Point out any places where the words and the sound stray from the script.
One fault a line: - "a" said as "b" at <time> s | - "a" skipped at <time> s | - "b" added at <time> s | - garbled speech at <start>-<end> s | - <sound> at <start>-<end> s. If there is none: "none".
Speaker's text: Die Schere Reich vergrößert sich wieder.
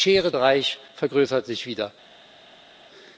none